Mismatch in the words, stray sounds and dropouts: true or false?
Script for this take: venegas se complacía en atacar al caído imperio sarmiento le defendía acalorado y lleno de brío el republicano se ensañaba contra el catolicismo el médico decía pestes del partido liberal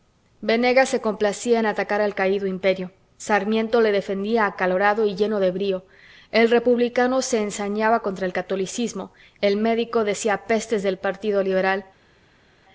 false